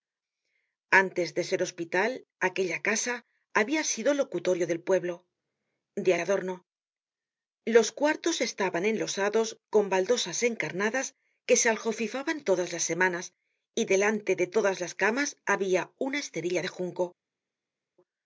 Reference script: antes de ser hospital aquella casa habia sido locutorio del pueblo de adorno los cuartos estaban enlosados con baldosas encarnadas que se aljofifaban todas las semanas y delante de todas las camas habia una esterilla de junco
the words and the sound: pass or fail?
pass